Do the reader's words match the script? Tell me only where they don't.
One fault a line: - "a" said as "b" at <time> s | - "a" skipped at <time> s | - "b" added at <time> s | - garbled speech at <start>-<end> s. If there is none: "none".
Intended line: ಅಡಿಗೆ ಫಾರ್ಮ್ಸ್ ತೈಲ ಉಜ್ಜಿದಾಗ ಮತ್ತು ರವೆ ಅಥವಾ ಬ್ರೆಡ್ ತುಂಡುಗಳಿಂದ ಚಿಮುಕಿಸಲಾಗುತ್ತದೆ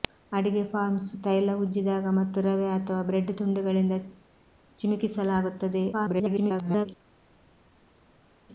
- garbled speech at 5.9-6.9 s